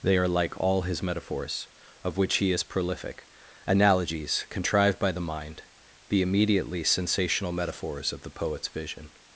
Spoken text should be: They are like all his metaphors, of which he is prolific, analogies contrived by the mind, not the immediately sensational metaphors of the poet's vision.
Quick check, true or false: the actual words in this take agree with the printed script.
false